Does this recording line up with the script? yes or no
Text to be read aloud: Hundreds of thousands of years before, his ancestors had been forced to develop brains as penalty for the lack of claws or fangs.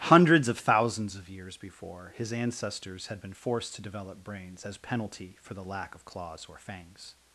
yes